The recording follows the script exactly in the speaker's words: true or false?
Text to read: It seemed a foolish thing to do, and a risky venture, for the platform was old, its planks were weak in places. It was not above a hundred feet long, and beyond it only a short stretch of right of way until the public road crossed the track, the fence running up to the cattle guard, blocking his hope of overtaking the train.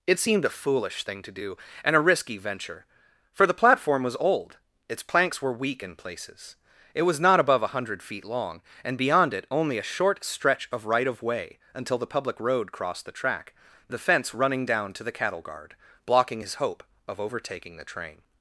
false